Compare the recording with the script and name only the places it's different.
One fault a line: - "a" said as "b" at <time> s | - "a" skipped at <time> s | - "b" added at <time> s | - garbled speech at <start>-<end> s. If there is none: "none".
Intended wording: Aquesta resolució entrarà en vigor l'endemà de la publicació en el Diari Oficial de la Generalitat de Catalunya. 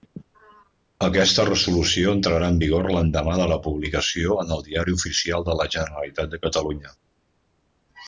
none